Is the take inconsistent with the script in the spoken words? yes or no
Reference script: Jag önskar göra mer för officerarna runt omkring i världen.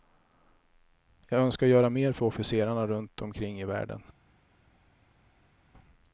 no